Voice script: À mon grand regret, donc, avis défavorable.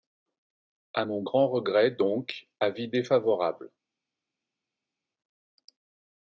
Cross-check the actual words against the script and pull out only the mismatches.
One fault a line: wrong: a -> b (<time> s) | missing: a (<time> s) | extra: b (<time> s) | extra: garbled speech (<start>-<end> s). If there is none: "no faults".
no faults